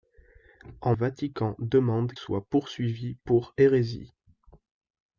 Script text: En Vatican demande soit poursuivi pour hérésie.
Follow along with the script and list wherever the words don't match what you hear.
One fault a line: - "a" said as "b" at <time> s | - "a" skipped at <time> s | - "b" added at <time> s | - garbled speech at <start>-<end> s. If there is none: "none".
none